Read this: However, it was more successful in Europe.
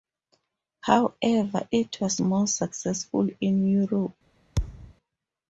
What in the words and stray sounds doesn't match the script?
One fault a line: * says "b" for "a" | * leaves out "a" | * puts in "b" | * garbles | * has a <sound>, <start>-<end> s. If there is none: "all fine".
* has a thud, 4.6-4.9 s